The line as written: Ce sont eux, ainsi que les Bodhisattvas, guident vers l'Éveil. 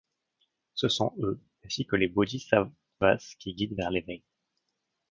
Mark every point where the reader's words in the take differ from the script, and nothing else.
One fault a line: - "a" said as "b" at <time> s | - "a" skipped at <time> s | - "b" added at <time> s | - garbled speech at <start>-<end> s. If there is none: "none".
- "qui" added at 3.4 s